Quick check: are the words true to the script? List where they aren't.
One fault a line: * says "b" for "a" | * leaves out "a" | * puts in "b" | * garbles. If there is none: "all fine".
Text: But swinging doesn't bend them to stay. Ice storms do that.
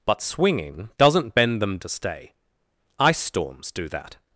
all fine